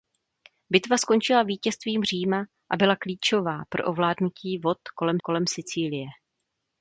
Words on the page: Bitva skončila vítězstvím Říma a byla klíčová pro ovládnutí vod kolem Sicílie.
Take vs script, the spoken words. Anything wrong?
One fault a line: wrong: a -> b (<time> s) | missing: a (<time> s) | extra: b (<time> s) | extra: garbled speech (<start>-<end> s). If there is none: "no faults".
extra: kolem (5.2 s)